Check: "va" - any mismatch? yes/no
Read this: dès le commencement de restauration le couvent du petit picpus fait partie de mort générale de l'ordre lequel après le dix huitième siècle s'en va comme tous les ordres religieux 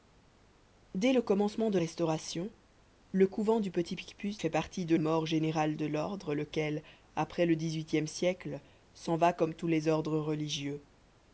no